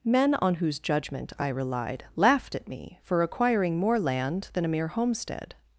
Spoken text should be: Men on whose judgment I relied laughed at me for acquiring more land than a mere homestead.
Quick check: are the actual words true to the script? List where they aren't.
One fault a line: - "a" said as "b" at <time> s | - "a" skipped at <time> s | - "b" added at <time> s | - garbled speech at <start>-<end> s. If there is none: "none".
none